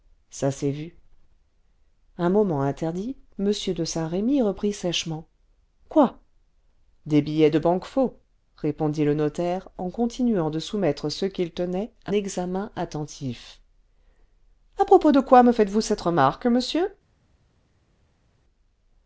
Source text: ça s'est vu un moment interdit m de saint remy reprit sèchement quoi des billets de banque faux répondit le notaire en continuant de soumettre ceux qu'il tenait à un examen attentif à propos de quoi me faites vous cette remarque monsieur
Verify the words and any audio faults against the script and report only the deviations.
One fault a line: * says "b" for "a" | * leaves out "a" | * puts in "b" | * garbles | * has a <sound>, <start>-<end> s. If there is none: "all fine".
* leaves out "un"